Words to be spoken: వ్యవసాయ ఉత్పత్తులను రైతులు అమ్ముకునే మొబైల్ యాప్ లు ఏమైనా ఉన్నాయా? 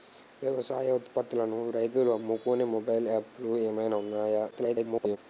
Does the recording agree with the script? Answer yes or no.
no